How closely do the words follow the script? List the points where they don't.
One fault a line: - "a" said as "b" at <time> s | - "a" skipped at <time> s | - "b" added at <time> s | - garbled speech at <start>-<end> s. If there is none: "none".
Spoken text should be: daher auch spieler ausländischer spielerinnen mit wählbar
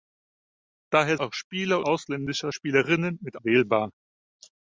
none